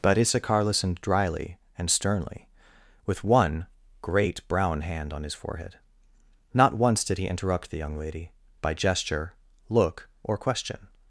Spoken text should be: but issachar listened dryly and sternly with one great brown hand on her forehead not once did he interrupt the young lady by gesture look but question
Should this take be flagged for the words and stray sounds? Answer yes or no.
yes